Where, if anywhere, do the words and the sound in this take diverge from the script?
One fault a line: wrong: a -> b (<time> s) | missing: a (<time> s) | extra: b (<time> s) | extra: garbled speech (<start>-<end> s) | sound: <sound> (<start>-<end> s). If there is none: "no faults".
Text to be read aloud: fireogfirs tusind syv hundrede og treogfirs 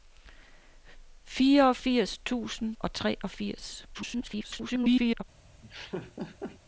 missing: syv hundrede (2.8 s)
extra: garbled speech (3.9-5.2 s)
sound: laugh (5.6-6.6 s)